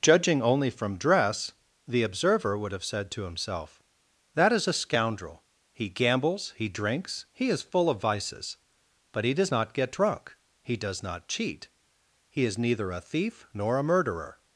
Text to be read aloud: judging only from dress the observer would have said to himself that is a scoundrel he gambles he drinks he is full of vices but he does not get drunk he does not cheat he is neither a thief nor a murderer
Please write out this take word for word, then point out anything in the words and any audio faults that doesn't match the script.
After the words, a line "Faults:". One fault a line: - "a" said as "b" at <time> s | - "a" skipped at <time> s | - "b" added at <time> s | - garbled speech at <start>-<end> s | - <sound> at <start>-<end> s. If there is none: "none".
judging only from dress the observer would have said to himself that is a scoundrel he gambles he drinks he is full of vices but he does not get drunk he does not cheat he is neither a thief nor a murderer
Faults:
none